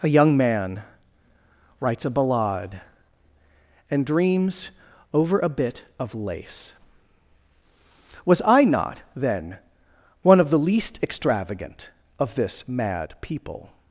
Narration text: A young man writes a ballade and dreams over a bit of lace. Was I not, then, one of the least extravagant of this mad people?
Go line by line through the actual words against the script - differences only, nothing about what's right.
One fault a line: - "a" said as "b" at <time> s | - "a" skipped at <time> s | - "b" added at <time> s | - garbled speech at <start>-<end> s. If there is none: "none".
none